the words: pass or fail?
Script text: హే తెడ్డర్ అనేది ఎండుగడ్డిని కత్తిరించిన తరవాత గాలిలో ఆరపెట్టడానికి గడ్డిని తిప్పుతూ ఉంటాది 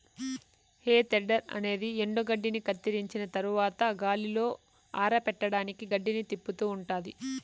pass